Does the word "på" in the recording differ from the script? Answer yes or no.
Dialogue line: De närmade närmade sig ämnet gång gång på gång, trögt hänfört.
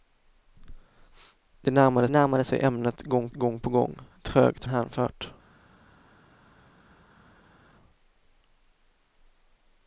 no